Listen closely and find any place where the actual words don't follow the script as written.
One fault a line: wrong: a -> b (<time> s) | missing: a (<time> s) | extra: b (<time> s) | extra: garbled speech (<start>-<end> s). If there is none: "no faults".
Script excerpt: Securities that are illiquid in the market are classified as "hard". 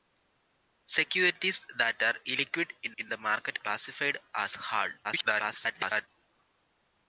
extra: in (3.0 s)
missing: are (3.6 s)
extra: garbled speech (5.0-6.1 s)